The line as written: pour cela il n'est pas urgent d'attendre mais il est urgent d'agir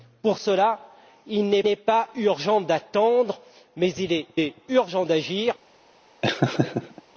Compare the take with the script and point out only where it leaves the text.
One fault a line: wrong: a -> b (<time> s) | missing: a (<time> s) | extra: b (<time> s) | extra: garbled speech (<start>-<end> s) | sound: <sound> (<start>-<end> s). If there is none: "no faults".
extra: n'est (1.6 s)
extra: est (4.4 s)
sound: laugh (6.2-7.0 s)